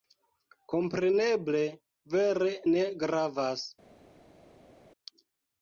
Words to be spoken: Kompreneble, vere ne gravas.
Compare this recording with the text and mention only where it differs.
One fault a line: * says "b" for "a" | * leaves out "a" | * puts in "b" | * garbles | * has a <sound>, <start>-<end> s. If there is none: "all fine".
all fine